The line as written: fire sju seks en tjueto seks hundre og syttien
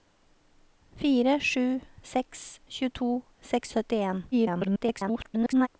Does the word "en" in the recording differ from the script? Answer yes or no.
yes